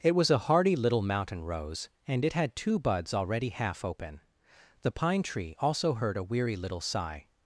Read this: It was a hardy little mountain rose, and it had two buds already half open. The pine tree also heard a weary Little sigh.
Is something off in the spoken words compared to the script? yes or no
no